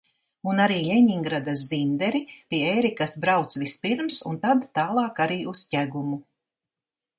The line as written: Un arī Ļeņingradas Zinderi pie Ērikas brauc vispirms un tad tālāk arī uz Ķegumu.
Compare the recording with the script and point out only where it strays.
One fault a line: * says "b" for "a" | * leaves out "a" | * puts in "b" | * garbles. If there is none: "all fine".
all fine